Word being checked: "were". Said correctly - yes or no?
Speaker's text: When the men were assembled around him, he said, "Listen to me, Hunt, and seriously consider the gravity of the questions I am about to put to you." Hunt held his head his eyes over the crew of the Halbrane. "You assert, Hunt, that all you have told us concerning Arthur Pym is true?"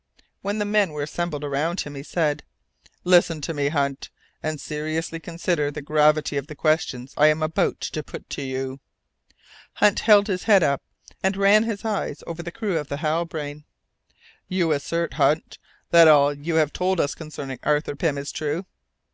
yes